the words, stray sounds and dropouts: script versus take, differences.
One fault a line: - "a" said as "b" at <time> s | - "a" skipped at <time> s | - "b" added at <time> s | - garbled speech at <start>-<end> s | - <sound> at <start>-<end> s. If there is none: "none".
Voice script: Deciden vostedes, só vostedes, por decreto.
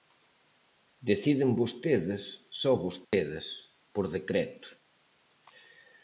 - dropout at 3.0-3.1 s